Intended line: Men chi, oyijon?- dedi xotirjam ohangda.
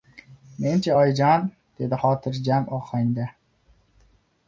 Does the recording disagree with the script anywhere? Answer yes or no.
no